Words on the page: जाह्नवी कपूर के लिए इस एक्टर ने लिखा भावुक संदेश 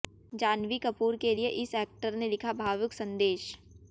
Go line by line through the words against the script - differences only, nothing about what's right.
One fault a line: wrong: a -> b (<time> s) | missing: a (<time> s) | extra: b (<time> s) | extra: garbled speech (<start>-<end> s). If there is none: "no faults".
no faults